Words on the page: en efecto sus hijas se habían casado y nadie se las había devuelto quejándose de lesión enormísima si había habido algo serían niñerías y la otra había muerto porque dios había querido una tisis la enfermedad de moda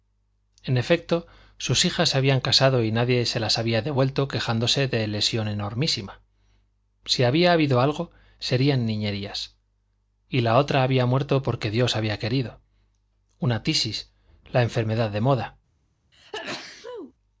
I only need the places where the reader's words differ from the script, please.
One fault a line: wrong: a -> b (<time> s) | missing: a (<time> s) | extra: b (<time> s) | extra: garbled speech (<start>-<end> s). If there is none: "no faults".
no faults